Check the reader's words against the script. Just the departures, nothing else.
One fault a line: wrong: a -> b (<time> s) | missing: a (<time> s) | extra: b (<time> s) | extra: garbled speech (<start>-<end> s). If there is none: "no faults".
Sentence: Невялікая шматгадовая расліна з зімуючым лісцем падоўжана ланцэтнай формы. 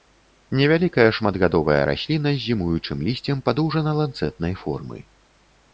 no faults